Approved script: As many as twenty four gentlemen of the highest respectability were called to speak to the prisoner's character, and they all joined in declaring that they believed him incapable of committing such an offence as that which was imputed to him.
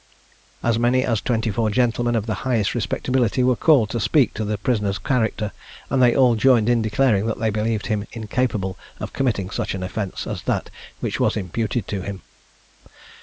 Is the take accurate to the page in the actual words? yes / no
yes